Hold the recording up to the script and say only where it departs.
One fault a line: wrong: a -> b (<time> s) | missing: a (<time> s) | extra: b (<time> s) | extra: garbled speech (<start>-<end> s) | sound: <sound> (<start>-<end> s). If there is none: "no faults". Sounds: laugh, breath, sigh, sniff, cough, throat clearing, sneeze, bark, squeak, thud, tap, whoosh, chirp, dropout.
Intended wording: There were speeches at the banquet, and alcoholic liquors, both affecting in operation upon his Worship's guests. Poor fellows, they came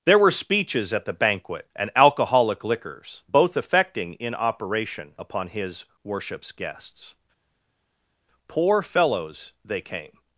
no faults